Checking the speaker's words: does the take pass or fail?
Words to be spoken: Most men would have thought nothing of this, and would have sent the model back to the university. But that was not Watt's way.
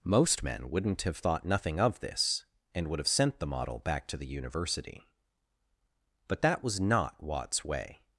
fail